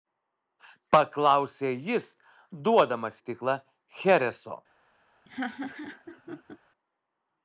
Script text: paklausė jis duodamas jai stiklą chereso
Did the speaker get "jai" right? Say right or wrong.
wrong